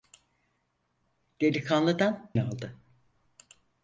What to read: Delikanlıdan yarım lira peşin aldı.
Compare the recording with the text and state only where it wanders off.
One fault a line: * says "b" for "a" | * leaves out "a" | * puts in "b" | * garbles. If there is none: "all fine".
* leaves out "yarım lira peşin"